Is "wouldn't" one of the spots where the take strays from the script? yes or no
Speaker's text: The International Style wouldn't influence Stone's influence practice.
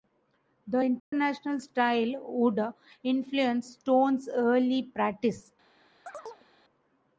yes